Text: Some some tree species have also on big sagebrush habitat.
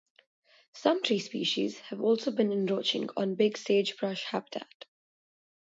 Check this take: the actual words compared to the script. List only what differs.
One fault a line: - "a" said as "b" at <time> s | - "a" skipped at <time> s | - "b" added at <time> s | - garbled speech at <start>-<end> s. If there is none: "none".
- "some" skipped at 1.0 s
- "been encroaching" added at 2.3 s